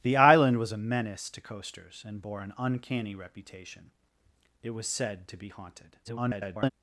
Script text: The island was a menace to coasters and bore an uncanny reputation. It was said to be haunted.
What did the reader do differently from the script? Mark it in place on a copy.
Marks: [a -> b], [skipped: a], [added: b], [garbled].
The island was a menace to coasters and bore an uncanny reputation. It was said to be haunted. [garbled]